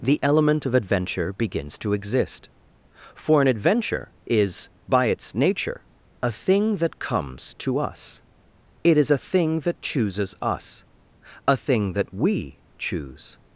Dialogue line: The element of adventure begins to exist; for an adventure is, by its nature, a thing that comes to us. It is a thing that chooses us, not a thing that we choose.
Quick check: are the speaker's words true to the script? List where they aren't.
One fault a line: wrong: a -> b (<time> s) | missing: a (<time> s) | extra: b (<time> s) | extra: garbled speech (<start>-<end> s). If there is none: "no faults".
missing: not (10.8 s)